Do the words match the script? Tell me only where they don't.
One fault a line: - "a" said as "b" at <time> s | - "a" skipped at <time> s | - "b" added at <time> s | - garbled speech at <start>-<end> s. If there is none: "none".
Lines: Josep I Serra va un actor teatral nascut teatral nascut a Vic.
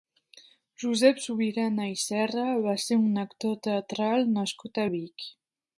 - "Subirana" added at 1.2 s
- "ser" added at 2.9 s
- "teatral nascut" skipped at 4.8 s